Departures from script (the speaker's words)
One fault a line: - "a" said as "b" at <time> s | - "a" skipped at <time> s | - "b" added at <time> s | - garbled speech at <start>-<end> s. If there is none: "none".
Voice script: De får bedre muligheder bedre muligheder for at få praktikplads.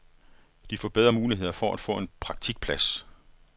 - "bedre muligheder" skipped at 1.5 s
- "en" added at 2.0 s